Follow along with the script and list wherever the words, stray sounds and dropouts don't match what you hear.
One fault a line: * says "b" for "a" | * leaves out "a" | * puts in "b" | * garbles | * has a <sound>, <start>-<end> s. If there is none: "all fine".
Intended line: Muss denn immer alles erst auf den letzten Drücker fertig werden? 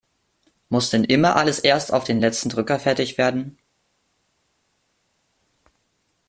all fine